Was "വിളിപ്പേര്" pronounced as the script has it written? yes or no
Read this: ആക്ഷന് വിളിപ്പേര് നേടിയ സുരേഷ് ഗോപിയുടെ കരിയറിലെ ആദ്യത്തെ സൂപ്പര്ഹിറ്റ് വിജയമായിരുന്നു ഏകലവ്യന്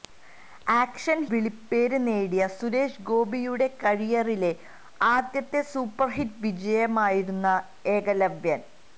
yes